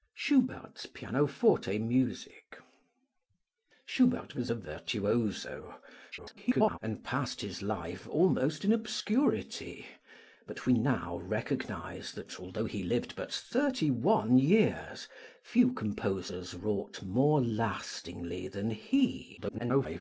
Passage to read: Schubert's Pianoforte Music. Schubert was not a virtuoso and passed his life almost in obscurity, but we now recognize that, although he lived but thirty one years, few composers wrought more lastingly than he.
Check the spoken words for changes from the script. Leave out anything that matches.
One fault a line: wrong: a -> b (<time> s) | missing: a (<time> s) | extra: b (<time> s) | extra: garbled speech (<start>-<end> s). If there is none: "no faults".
missing: not (4.5 s)
extra: garbled speech (6.1-6.8 s)
extra: garbled speech (19.4-20.0 s)